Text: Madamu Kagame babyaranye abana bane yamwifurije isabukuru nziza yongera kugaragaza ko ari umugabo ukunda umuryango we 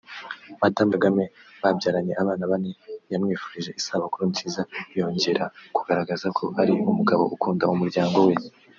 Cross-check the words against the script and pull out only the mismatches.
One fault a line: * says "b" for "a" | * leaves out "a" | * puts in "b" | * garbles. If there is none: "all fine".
all fine